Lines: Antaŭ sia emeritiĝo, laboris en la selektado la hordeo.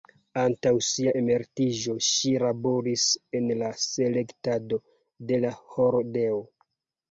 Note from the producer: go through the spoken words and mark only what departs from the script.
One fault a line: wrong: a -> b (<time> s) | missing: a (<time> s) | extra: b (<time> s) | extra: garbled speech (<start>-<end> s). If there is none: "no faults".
extra: ŝi (2.1 s)
extra: de (5.3 s)